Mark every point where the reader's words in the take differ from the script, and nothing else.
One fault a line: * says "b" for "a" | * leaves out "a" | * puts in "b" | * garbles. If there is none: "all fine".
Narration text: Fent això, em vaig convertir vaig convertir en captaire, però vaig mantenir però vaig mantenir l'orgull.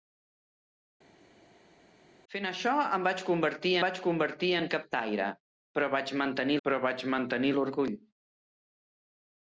all fine